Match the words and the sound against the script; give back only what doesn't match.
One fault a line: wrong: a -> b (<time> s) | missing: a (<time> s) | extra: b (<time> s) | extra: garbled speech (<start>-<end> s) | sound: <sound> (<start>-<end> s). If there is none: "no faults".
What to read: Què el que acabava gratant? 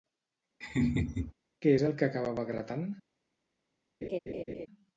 sound: laugh (0.6-1.3 s)
extra: és (1.8 s)
sound: laugh (4.0-4.7 s)